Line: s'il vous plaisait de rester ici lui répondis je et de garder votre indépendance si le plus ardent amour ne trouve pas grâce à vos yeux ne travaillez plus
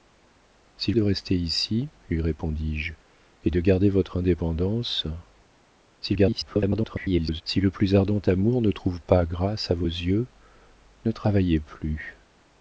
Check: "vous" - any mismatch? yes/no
yes